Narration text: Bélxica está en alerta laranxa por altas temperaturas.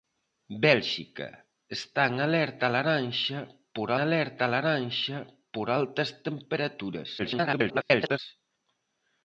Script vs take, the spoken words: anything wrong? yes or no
yes